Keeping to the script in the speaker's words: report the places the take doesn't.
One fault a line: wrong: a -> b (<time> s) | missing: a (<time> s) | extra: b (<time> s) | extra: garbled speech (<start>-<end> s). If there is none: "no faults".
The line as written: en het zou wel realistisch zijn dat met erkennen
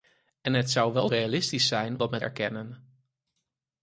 no faults